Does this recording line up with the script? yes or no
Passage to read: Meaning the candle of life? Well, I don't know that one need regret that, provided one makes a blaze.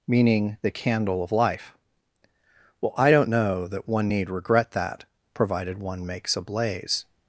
yes